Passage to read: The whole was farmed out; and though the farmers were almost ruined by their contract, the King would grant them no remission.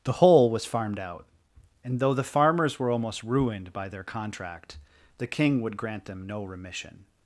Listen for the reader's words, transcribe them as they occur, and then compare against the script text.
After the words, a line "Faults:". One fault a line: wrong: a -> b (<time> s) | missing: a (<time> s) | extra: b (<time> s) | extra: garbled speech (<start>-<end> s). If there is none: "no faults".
The whole was farmed out; and though the farmers were almost ruined by their contract, the King would grant them no remission.
Faults:
no faults